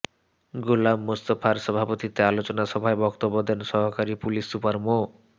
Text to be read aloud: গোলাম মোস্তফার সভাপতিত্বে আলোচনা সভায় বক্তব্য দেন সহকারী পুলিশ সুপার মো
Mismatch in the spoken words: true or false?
false